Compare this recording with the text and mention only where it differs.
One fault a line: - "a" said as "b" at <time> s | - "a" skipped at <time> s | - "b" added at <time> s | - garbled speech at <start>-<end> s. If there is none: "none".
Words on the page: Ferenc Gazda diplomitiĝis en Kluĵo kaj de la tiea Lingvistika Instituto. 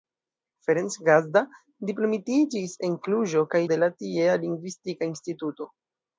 none